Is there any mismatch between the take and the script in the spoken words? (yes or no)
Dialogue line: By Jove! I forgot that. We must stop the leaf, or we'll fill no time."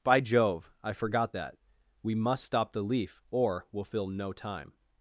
no